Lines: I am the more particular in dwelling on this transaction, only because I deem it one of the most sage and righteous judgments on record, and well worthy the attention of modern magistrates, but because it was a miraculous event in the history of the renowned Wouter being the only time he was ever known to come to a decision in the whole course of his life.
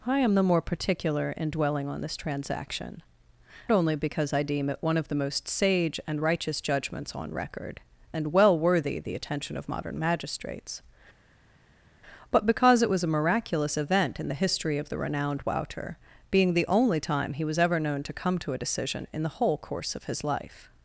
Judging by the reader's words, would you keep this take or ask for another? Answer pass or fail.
pass